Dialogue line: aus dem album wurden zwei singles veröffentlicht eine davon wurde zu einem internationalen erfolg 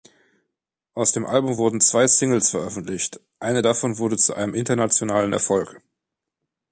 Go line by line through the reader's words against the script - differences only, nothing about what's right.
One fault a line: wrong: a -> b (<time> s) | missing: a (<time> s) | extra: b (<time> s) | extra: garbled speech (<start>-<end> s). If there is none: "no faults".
no faults